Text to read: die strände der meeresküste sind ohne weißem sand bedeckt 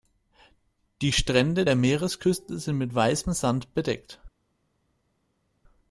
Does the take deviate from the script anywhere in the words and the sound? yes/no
yes